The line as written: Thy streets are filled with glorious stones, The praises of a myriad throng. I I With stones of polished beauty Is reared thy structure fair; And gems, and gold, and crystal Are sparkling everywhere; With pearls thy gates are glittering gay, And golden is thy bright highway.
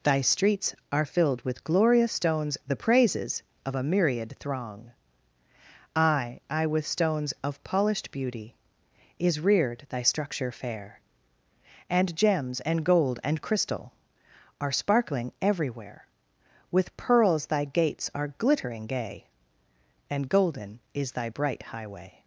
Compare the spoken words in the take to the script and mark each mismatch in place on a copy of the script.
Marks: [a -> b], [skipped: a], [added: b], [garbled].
Thy streets are filled with glorious stones, The praises of a myriad throng. I I With stones of polished beauty Is reared thy structure fair; And gems, and gold, and crystal Are sparkling everywhere; With pearls thy gates are glittering gay, And golden is thy bright highway.